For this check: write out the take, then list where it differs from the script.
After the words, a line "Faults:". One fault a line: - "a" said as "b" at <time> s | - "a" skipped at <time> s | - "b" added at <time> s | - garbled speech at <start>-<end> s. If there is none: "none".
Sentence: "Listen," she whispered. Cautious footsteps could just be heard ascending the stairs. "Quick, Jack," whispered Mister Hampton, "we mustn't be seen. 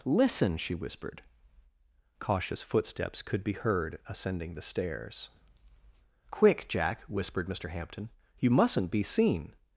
"Listen," she whispered. Cautious footsteps could be heard ascending the stairs. "Quick, Jack," whispered Mister Hampton, "you mustn't be seen.
Faults:
- "just" skipped at 3.4 s
- "we" said as "you" at 8.4 s